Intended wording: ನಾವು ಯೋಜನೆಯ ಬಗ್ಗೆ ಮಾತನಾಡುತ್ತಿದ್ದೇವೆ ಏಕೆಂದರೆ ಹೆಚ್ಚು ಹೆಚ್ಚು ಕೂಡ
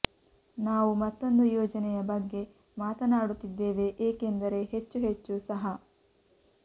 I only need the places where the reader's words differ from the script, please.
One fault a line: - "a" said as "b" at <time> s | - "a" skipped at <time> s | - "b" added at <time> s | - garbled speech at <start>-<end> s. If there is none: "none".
- "ಮತ್ತೊಂದು" added at 0.9 s
- "ಕೂಡ" said as "ಸಹ" at 5.5 s